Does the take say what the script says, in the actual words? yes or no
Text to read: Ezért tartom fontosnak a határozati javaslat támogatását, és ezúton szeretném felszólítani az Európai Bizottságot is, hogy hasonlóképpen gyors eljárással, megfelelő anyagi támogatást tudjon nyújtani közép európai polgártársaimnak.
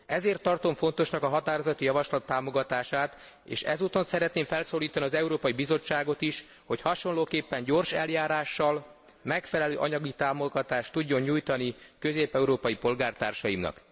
yes